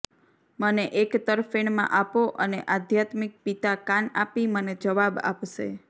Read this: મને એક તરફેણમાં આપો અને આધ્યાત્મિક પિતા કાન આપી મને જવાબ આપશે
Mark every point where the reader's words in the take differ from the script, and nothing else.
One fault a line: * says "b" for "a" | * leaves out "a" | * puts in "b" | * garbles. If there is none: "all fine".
all fine